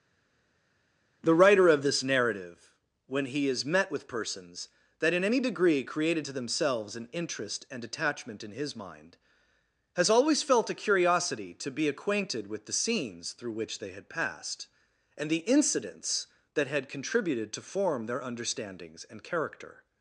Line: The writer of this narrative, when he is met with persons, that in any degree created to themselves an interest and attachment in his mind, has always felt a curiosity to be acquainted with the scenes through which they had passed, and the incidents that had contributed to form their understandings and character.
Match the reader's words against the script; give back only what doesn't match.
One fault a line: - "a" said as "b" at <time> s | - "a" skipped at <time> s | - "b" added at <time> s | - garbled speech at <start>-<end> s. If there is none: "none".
none